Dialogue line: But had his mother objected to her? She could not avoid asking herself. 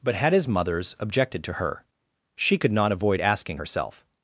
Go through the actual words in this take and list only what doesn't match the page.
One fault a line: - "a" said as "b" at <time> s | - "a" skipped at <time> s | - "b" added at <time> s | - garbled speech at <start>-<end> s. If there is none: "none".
- "mother" said as "mothers" at 0.5 s